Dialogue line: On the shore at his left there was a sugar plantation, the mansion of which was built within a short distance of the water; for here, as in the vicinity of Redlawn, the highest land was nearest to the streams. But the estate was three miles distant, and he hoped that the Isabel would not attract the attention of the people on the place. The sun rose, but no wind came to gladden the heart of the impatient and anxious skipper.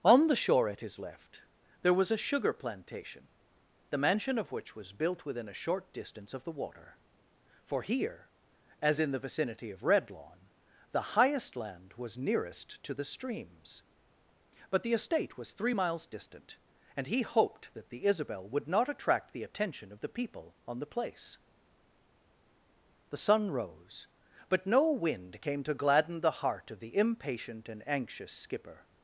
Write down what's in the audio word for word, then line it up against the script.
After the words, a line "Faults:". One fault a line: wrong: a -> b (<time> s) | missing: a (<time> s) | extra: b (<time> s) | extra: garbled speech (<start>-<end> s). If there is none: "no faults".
On the shore at his left there was a sugar plantation, the mansion of which was built within a short distance of the water; for here, as in the vicinity of Redlawn, the highest land was nearest to the streams. But the estate was three miles distant, and he hoped that the Isabel would not attract the attention of the people on the place. The sun rose, but no wind came to gladden the heart of the impatient and anxious skipper.
Faults:
no faults